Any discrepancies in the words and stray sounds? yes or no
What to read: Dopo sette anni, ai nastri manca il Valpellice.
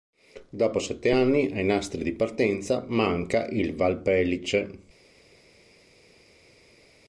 yes